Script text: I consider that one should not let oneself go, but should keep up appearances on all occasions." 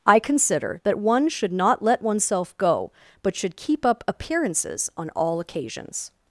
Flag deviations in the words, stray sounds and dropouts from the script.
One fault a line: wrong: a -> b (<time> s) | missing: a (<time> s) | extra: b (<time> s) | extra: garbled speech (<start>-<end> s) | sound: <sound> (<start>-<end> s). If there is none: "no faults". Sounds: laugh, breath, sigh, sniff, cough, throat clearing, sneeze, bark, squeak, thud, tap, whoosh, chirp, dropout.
no faults